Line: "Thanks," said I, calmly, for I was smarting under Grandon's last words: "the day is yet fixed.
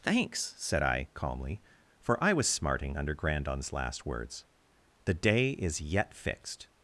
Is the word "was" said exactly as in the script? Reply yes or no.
yes